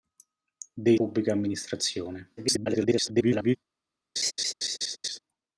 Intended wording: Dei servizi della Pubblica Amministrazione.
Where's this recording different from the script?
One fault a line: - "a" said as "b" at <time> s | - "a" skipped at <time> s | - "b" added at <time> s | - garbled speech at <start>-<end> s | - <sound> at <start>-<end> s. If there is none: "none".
- "servizi della" skipped at 1.0 s
- garbled speech at 2.4-3.6 s
- laugh at 4.2-5.2 s